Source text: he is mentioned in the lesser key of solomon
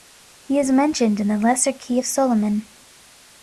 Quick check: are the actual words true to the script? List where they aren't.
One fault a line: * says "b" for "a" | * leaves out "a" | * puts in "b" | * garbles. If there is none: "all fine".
all fine